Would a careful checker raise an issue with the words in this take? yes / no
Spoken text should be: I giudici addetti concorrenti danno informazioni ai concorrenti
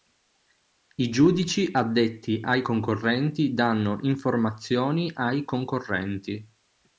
yes